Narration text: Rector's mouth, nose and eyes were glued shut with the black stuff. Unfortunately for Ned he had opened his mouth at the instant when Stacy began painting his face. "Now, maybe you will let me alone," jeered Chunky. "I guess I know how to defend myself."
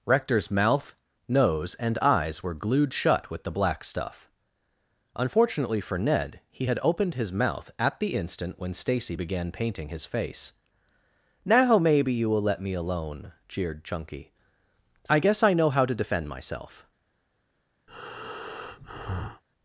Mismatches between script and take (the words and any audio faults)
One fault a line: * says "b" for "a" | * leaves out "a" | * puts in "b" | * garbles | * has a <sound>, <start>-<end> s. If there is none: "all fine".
* has a breath, 17.9-19.4 s